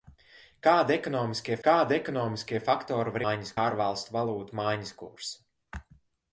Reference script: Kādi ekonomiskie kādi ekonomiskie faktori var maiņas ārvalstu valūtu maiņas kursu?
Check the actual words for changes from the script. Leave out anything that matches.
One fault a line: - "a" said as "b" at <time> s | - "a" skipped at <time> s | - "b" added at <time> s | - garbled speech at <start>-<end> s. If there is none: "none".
none